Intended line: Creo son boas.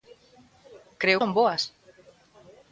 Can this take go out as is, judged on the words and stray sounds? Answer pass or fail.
pass